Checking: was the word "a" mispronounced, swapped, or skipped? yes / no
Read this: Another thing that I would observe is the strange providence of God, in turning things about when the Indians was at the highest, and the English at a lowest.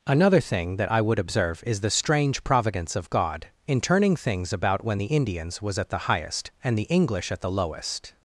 yes